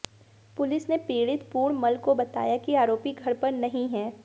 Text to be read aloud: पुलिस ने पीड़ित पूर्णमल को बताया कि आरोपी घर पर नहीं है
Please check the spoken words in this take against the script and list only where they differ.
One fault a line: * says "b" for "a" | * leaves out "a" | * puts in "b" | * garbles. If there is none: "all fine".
all fine